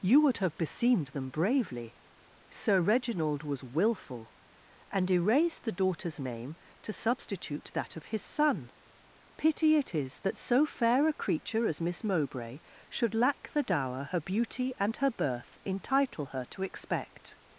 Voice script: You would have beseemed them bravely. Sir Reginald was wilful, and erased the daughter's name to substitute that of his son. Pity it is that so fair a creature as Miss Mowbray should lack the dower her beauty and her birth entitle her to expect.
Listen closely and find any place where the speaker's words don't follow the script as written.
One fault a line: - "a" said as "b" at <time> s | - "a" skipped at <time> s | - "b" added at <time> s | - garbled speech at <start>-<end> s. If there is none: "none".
none